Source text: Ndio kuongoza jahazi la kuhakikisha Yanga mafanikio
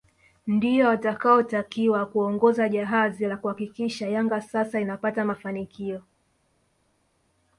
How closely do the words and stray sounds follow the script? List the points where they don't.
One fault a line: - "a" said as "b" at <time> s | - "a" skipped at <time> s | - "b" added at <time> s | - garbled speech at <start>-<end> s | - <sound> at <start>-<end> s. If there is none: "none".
- "watakaotakiwa" added at 0.9 s
- "sasa inapata" added at 4.4 s